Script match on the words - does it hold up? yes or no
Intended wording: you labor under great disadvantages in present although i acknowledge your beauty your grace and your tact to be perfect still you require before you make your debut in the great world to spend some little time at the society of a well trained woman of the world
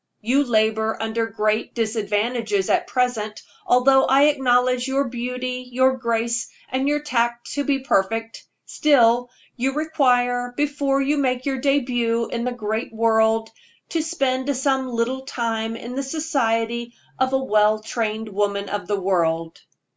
no